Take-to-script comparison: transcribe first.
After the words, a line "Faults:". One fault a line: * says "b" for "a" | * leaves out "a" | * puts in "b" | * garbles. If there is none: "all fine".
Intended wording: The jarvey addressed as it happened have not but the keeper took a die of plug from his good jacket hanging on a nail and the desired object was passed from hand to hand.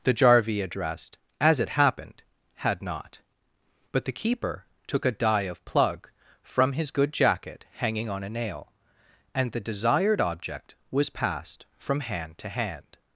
The jarvey addressed as it happened had not but the keeper took a die of plug from his good jacket hanging on a nail and the desired object was passed from hand to hand.
Faults:
* says "had" for "have"